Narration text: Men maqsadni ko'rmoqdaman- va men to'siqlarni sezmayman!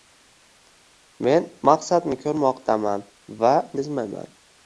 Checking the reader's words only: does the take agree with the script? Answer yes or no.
no